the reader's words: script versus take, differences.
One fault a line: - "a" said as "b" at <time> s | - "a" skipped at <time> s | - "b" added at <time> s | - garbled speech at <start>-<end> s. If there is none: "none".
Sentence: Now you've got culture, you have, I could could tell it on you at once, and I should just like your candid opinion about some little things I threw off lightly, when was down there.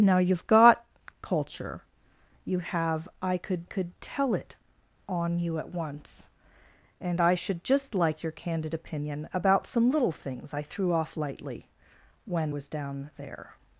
none